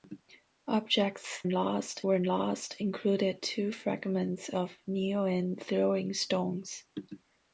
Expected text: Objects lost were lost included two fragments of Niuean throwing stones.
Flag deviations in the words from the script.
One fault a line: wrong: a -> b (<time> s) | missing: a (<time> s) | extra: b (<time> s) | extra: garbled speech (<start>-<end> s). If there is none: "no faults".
no faults